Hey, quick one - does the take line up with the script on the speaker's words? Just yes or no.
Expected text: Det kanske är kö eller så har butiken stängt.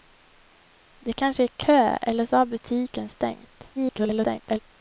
no